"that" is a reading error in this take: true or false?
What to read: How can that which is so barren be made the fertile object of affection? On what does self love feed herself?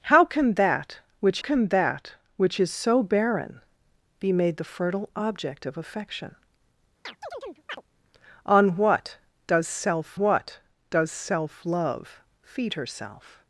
false